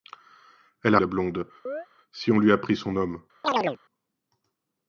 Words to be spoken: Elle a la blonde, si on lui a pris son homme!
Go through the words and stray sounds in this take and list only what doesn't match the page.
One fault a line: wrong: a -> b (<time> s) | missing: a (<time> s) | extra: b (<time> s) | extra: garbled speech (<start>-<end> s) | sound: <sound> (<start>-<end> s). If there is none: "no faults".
sound: chirp (1.7-1.9 s)
sound: chirp (3.4-3.8 s)